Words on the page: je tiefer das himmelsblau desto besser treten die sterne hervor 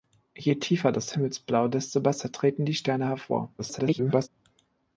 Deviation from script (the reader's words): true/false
true